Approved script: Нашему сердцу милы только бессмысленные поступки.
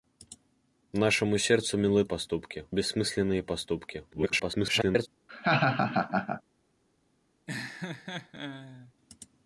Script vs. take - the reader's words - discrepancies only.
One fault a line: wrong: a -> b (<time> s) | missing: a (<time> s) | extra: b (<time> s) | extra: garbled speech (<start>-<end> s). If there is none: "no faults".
wrong: только -> поступки (2.0 s)
extra: garbled speech (4.1-5.1 s)